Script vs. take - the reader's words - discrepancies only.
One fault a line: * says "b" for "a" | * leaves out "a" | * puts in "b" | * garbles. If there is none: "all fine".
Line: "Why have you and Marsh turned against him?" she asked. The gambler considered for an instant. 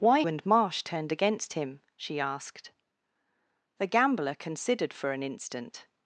* leaves out "have you"